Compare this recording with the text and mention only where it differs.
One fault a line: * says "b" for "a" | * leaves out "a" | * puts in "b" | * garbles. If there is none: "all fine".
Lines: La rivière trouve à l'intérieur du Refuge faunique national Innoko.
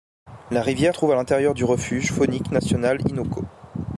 all fine